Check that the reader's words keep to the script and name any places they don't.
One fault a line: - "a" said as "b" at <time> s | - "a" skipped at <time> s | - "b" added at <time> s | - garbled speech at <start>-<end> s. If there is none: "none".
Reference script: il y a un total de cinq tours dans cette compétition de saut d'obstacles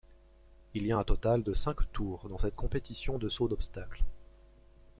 none